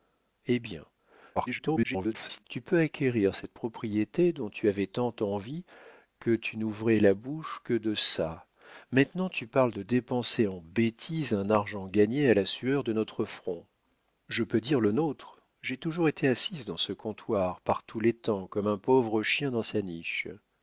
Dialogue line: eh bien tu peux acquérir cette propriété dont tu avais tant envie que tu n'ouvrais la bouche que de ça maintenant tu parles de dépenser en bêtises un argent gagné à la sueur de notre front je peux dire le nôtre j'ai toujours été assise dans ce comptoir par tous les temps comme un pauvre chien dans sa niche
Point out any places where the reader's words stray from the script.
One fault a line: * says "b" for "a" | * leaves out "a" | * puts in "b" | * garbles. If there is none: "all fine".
* garbles